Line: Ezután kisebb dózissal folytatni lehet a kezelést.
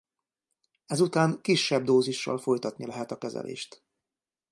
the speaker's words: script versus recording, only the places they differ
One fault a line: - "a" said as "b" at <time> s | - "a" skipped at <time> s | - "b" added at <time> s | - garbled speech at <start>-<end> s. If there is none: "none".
none